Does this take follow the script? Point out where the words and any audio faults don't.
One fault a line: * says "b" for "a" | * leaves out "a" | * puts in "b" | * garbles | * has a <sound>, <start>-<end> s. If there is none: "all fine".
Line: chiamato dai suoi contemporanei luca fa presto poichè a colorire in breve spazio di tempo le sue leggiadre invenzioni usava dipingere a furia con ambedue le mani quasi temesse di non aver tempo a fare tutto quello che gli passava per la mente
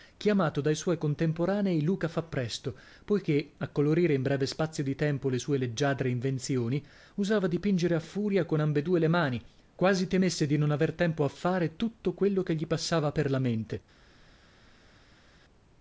all fine